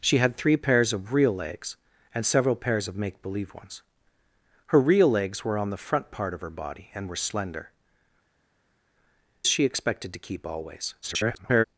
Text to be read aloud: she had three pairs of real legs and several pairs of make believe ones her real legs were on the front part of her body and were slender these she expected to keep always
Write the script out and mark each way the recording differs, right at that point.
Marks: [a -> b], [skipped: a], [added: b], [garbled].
she had three pairs of real legs and several pairs of make believe ones her real legs were on the front part of her body and were slender [skipped: these] she expected to keep always [garbled]